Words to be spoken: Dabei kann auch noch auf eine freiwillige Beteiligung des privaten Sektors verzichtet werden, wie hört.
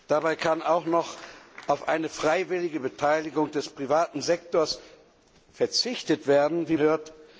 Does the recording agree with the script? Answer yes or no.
yes